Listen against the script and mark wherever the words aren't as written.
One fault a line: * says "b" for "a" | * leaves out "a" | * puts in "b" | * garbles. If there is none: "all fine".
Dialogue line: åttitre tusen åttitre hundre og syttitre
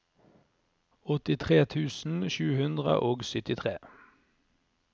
* says "sju" for "åttitre"